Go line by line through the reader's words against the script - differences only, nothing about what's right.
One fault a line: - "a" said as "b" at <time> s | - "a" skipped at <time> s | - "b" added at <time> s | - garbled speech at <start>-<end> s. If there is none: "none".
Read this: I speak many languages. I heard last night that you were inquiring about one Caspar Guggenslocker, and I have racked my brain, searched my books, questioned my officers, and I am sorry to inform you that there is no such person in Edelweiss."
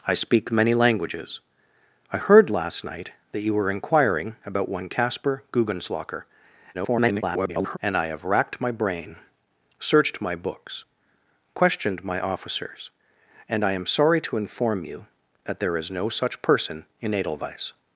- garbled speech at 6.7-7.8 s